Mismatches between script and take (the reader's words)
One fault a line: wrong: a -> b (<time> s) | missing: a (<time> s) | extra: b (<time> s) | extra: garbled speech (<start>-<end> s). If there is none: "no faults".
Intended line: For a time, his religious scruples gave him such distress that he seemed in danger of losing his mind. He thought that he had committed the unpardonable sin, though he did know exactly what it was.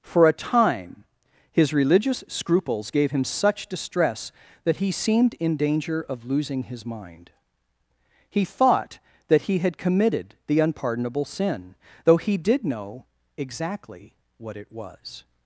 no faults